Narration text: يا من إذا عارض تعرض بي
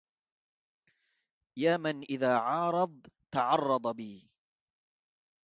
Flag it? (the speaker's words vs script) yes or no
no